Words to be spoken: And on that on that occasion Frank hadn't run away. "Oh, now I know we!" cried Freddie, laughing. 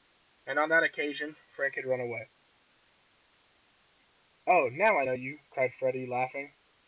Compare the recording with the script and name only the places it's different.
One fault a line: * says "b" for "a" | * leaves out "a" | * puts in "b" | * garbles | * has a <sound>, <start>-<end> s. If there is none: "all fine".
* leaves out "on that"
* says "had" for "hadn't"
* says "you" for "we"